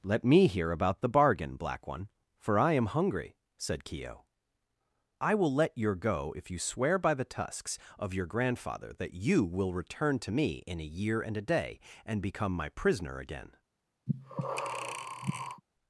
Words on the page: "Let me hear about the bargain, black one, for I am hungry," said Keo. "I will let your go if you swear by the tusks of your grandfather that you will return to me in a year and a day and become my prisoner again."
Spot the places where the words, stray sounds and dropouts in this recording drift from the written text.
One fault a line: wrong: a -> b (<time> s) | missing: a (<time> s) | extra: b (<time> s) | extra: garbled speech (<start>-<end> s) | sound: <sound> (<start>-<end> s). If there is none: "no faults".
sound: breath (14.1-15.6 s)